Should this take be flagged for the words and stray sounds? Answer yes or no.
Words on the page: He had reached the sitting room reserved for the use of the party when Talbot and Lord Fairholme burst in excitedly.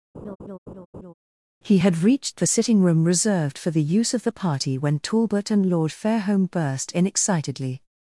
yes